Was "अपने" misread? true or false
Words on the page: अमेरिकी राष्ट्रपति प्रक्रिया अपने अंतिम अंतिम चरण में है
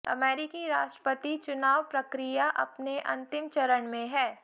false